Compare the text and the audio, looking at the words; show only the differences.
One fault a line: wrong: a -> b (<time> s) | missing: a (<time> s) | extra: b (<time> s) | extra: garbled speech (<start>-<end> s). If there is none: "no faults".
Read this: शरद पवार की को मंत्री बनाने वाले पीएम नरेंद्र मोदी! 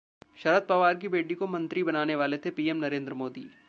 extra: बेटी (1.1 s)
extra: थे (2.4 s)